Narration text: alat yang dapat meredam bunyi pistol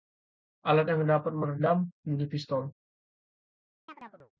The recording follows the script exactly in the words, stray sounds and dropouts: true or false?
false